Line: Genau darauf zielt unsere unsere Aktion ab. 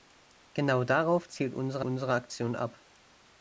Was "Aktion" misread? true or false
false